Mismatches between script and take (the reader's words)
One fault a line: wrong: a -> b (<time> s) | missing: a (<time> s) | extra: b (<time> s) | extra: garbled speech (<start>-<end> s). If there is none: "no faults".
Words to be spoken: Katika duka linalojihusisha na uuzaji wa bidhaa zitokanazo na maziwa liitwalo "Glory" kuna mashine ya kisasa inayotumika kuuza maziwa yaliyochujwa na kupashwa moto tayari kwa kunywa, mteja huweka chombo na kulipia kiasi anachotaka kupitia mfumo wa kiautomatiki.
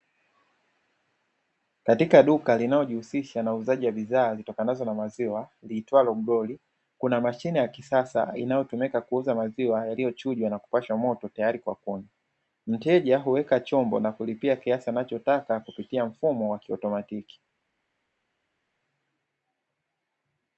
no faults